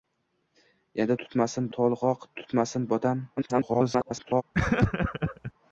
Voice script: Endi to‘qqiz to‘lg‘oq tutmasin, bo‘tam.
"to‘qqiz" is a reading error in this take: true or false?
true